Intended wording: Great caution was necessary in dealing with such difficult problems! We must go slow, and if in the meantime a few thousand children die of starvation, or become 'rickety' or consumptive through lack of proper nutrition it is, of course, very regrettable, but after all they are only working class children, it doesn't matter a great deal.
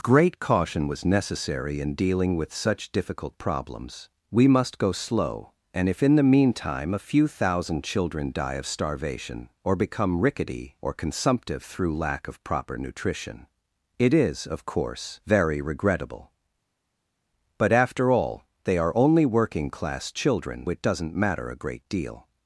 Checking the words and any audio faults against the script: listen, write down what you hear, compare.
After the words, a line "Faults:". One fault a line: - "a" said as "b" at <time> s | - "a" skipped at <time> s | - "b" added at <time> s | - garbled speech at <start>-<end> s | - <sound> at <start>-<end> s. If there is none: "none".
Great caution was necessary in dealing with such difficult problems! We must go slow, and if in the meantime a few thousand children die of starvation, or become 'rickety' or consumptive through lack of proper nutrition it is, of course, very regrettable, but after all they are only working class children, it doesn't matter a great deal.
Faults:
none